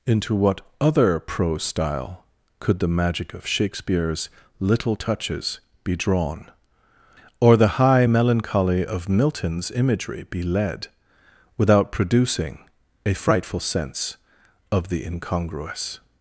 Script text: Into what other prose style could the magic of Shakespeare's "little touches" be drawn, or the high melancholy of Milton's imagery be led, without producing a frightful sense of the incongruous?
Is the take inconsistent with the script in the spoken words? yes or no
no